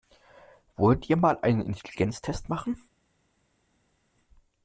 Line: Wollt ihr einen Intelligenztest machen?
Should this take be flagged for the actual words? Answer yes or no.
yes